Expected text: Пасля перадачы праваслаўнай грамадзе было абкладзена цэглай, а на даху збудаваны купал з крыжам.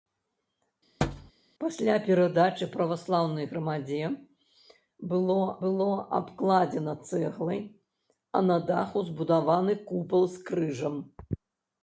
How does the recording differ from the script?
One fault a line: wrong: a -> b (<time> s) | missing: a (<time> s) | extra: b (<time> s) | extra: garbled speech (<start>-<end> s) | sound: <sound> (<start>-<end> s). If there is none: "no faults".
sound: thud (1.0-1.3 s)
extra: было (5.6 s)